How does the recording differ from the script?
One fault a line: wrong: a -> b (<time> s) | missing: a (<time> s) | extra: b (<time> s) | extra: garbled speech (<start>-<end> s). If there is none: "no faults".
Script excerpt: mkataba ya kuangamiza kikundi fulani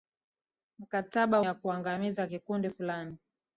no faults